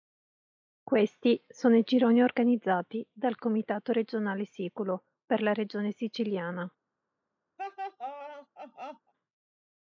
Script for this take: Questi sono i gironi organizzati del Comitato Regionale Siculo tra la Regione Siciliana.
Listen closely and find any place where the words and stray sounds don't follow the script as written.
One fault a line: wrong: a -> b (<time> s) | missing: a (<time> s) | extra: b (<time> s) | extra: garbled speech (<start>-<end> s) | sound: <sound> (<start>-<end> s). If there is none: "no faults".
wrong: del -> dal (3.1 s)
wrong: tra -> per (5.2 s)
sound: laugh (7.6-9.1 s)